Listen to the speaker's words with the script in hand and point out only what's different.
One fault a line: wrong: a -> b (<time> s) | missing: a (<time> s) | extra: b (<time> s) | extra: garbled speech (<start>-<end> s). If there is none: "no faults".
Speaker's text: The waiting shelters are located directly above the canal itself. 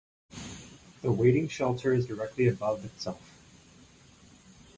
missing: are located (2.1 s)
missing: canal (2.9 s)